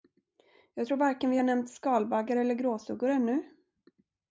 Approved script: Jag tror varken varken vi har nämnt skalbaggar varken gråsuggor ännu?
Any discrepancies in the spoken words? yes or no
yes